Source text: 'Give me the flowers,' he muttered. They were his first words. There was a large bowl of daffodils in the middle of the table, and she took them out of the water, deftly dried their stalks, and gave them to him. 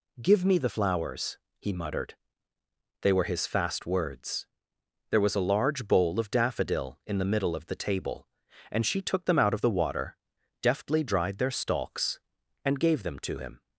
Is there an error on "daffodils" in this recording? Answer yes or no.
yes